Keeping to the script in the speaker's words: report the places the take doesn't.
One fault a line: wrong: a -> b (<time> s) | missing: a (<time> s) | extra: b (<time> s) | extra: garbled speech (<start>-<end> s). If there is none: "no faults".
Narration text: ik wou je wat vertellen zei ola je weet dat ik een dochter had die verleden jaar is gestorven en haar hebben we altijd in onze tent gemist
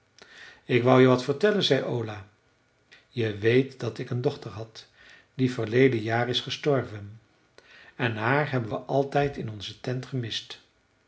no faults